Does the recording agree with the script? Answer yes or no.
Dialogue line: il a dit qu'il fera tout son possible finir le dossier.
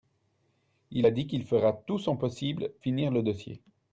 yes